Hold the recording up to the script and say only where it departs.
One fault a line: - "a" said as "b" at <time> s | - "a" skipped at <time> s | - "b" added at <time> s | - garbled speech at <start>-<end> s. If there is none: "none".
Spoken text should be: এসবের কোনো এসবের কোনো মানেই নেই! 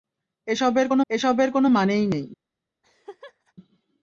none